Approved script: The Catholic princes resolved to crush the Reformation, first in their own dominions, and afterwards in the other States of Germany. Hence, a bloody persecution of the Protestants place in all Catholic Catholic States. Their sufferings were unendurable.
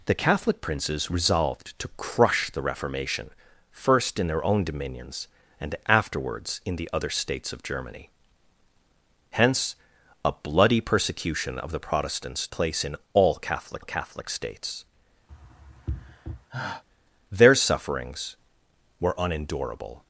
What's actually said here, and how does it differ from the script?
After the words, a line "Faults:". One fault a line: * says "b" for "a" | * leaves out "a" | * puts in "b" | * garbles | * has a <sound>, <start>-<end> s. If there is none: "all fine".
The Catholic princes resolved to crush the Reformation, first in their own dominions, and afterwards in the other States of Germany. Hence, a bloody persecution of the Protestants place in all Catholic Catholic States. Their sufferings were unendurable.
Faults:
* has a sigh, 15.3-16.8 s